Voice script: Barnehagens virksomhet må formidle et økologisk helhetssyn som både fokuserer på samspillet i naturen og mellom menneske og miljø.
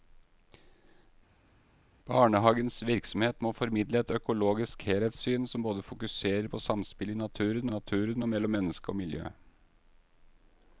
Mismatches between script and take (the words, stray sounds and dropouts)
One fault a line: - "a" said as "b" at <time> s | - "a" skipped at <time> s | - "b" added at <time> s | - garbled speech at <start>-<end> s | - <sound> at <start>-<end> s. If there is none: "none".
- "naturen" added at 7.7 s